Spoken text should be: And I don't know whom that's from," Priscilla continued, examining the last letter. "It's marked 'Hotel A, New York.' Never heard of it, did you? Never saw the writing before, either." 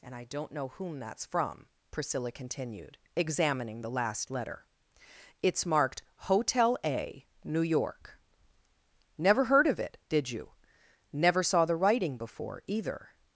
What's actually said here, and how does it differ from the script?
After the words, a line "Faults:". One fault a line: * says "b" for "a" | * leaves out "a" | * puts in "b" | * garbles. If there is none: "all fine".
And I don't know whom that's from," Priscilla continued, examining the last letter. "It's marked 'Hotel A, New York.' Never heard of it, did you? Never saw the writing before, either."
Faults:
all fine